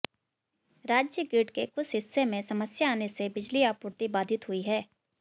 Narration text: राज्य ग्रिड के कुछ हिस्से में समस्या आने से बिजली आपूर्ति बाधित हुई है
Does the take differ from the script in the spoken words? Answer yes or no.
no